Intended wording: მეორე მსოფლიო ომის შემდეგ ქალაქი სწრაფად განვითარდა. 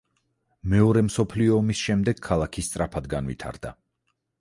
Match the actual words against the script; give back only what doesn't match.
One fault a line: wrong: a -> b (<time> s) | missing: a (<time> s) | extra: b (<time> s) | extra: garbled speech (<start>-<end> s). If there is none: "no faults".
no faults